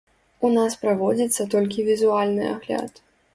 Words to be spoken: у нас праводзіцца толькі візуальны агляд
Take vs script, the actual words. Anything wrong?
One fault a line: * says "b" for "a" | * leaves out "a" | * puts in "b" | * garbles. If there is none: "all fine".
all fine